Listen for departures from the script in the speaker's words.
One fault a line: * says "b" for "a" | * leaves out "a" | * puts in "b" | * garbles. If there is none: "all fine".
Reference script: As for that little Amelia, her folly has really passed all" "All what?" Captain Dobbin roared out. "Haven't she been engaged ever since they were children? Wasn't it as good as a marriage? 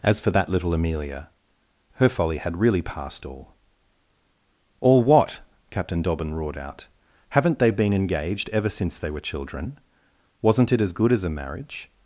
* says "had" for "has"
* says "they" for "she"